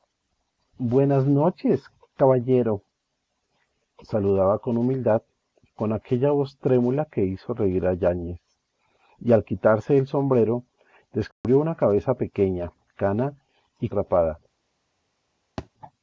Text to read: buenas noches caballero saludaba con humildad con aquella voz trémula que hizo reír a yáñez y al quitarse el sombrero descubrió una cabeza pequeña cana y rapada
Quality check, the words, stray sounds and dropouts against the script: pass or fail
fail